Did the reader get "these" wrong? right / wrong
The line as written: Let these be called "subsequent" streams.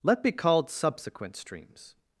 wrong